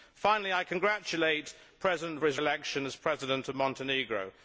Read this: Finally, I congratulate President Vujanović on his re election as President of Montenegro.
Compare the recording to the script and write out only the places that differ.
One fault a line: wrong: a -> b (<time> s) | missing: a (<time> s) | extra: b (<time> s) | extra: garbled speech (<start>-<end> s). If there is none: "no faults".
missing: Vujanović (2.2 s)
missing: re (2.4 s)